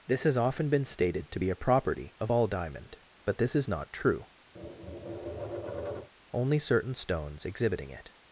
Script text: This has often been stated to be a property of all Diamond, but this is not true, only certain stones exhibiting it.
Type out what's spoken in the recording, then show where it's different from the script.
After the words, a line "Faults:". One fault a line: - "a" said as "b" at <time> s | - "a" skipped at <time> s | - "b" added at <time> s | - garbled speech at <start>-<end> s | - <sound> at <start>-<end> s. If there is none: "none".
This has often been stated to be a property of all Diamond, but this is not true, only certain stones exhibiting it.
Faults:
- tap at 4.5-6.1 s